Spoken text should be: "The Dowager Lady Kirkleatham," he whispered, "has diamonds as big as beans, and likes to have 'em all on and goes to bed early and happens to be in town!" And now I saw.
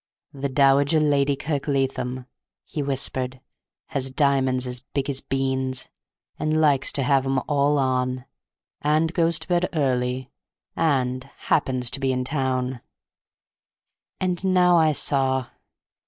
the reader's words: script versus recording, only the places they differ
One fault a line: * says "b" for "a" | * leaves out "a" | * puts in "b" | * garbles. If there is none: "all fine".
all fine